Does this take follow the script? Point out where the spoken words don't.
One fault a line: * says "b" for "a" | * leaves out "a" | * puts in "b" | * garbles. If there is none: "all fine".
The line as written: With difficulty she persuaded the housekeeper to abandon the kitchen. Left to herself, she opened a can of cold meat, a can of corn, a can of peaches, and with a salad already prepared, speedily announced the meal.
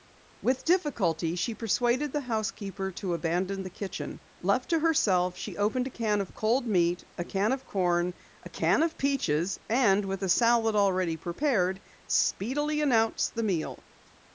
all fine